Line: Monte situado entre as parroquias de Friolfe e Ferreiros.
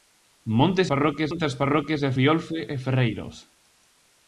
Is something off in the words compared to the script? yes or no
yes